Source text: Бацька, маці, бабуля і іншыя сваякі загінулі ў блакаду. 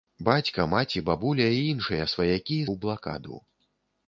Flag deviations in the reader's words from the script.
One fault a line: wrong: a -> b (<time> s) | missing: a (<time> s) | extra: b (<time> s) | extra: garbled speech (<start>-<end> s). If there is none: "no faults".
missing: загінулі (2.6 s)